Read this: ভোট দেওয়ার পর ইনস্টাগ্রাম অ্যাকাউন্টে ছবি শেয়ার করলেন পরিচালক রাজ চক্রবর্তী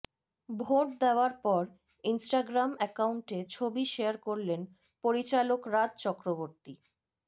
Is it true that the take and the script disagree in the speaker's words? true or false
false